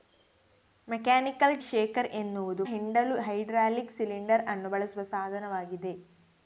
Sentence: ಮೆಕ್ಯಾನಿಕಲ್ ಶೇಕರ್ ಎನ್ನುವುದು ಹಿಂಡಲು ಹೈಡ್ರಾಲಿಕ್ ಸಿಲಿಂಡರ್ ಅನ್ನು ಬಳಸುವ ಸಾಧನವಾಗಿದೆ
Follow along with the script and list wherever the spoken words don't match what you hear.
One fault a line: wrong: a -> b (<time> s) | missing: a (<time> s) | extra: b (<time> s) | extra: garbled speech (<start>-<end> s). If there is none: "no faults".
no faults